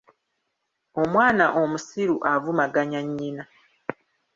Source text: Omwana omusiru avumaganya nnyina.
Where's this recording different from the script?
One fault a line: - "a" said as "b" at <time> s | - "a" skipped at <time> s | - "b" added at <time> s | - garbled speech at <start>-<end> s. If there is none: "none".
none